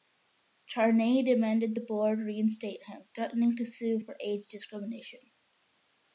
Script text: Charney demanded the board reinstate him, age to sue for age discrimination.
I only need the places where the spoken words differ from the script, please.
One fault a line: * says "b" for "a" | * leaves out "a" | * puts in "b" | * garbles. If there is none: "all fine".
* says "threatening" for "age"